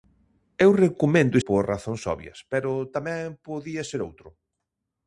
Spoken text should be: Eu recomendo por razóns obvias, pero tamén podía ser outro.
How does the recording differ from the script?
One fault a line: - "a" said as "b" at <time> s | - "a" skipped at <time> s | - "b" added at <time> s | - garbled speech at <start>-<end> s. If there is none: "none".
none